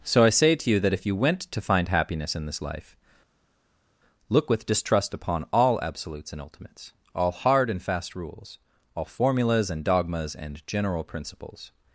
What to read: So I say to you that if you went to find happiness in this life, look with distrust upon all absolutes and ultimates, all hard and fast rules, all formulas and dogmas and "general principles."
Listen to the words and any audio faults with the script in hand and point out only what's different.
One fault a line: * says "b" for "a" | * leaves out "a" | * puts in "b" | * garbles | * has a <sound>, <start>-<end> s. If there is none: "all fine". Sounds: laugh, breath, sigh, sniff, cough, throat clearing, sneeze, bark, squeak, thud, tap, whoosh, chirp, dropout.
all fine